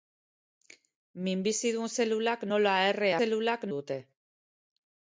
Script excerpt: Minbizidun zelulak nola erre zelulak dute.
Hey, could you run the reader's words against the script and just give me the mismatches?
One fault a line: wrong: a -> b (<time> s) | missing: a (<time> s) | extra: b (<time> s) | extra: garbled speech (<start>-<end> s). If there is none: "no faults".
no faults